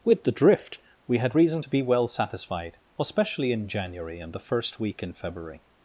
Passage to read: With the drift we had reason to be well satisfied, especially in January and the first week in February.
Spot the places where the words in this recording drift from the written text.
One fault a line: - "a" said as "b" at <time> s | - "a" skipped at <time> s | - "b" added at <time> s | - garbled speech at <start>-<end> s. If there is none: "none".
none